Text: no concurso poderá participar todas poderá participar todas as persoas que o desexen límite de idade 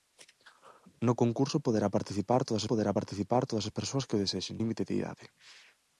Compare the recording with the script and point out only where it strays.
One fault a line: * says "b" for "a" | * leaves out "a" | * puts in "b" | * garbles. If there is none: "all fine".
all fine